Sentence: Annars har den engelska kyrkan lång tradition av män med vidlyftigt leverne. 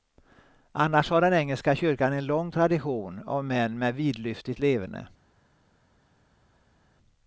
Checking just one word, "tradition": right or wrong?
right